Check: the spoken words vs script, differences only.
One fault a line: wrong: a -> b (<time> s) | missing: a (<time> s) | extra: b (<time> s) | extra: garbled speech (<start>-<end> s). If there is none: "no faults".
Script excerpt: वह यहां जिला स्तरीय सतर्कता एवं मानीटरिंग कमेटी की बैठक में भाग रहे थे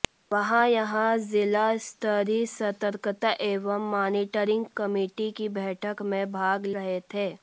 no faults